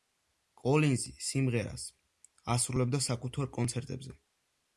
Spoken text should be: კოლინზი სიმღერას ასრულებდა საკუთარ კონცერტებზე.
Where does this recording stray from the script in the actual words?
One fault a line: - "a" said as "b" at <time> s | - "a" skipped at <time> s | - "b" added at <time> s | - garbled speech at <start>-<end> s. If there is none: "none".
none